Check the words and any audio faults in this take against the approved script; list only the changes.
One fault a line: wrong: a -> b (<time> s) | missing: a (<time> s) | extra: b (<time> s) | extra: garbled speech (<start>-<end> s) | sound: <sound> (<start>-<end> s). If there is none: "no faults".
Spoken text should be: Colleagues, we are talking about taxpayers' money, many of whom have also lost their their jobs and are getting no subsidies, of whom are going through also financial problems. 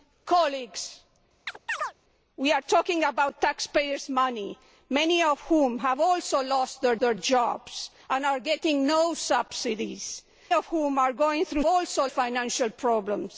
sound: chirp (1.5-1.9 s)